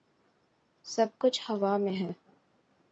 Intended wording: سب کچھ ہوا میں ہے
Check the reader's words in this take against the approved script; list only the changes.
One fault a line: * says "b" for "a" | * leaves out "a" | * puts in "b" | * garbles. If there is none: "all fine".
all fine